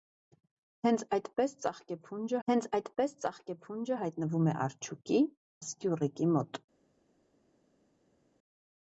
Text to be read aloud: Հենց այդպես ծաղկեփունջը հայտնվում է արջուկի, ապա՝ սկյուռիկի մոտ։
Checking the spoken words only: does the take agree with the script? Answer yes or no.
no